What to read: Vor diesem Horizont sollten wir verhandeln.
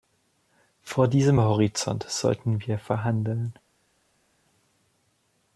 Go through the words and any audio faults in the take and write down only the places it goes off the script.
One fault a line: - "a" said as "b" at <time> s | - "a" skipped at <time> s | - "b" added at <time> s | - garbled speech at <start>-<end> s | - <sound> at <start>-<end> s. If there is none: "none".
none